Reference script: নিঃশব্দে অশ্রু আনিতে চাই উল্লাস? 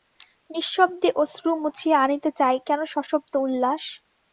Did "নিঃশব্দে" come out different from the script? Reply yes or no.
no